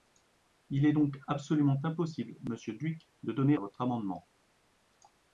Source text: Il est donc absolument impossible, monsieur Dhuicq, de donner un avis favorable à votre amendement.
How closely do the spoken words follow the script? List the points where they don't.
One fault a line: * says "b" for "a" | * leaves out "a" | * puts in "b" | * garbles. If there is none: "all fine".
* leaves out "un avis favorable"